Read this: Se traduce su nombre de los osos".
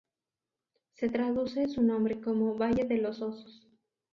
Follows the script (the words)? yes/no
no